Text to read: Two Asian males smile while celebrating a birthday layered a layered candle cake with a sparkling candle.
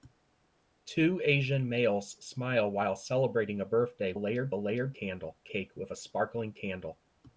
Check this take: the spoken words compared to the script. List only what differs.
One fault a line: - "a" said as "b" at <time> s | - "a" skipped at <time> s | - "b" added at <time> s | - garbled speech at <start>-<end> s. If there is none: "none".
none